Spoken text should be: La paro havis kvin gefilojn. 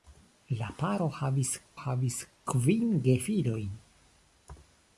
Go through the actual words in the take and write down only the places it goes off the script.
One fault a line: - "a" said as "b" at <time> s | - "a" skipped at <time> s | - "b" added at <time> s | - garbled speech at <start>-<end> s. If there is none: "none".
- "havis" added at 1.8 s